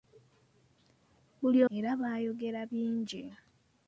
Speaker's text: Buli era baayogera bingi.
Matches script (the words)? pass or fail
pass